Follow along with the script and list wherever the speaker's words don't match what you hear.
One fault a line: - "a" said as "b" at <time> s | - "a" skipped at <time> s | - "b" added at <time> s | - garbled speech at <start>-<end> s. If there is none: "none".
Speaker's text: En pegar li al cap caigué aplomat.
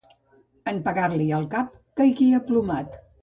none